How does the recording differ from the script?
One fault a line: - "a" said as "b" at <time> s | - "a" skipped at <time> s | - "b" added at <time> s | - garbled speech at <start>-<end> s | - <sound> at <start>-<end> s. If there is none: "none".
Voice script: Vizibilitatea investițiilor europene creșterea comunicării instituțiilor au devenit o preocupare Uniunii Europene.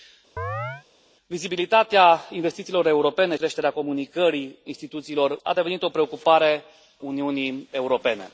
- chirp at 0.4-0.8 s